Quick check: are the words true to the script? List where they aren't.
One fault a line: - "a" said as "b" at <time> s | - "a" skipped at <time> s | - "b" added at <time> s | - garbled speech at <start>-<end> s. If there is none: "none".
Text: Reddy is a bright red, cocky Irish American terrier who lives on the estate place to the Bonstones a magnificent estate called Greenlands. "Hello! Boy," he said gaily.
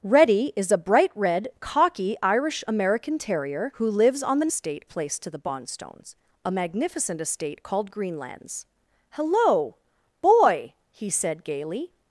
none